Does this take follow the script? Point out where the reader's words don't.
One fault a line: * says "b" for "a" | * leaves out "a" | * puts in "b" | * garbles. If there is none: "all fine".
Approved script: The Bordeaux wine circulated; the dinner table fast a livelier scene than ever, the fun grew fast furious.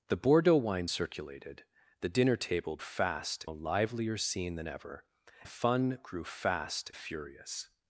all fine